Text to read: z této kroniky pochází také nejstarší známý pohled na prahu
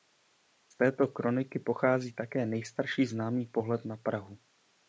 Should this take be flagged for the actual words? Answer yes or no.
no